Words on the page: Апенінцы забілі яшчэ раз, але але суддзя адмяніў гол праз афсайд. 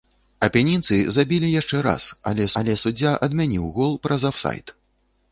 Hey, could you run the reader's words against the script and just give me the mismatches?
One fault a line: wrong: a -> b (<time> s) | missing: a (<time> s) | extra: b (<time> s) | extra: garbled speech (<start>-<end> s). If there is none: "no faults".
no faults